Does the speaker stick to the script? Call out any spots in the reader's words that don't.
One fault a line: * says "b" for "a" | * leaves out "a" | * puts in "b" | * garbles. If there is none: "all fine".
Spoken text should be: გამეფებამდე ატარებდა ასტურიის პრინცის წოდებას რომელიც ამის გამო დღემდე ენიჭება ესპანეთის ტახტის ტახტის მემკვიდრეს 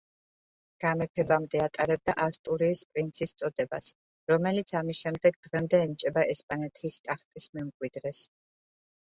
* says "შემდეგ" for "გამო"
* leaves out "ტახტის"